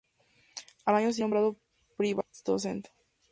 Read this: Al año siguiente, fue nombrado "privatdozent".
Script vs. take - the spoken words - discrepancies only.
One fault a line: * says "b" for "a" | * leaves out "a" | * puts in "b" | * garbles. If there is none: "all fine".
all fine